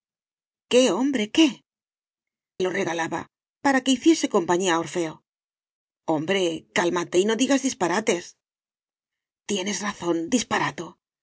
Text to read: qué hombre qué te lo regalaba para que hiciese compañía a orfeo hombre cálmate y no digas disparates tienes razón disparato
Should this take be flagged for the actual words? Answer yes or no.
yes